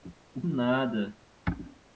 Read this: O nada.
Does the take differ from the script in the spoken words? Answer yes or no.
no